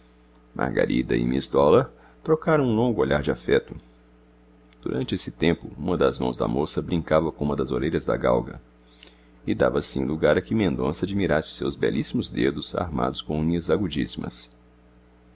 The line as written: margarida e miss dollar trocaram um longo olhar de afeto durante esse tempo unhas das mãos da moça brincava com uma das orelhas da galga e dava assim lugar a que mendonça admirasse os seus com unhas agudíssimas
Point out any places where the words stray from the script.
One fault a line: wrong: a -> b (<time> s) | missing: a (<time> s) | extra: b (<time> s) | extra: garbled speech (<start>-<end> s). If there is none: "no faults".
wrong: unhas -> uma (5.8 s)
extra: belíssimos dedos armados (11.8 s)